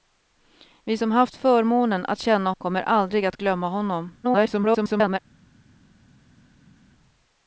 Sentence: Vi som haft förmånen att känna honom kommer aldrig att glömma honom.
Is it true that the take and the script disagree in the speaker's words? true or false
true